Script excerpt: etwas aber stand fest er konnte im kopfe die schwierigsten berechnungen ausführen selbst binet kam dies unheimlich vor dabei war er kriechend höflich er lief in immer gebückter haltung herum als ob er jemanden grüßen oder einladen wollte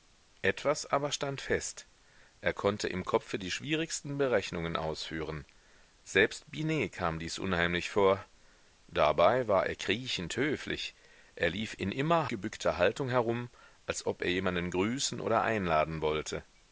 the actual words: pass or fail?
pass